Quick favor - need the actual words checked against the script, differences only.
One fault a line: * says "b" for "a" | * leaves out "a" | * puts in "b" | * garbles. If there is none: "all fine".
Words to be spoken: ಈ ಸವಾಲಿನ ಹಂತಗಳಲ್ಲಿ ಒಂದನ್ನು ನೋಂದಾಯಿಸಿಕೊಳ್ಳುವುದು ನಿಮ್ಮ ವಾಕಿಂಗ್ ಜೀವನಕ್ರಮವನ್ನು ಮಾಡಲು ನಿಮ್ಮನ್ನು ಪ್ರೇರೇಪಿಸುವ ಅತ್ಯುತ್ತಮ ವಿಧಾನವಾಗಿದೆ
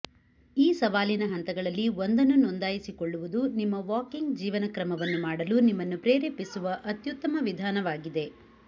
all fine